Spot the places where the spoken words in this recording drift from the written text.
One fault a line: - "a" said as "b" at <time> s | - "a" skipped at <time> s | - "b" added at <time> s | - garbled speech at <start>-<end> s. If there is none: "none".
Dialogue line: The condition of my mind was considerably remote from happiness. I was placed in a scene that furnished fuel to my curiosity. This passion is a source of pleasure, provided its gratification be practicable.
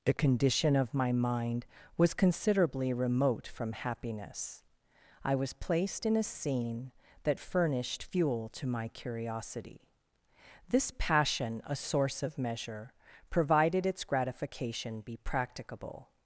- "is" skipped at 11.6 s
- "pleasure" said as "measure" at 12.4 s